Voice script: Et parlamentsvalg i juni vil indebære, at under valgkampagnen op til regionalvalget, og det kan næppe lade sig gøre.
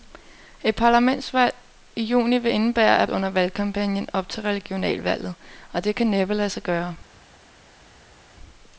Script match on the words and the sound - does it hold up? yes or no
yes